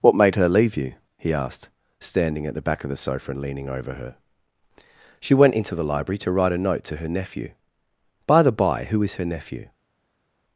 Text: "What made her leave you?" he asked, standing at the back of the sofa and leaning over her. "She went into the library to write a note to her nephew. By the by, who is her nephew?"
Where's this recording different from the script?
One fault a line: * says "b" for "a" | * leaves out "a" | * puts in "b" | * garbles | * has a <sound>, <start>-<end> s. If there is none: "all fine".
all fine